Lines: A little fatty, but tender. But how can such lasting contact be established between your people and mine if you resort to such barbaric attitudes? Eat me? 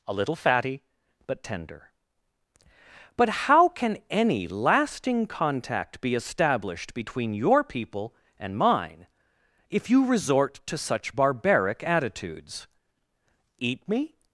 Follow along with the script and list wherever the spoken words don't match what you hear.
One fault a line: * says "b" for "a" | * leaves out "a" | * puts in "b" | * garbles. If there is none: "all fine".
* says "any" for "such"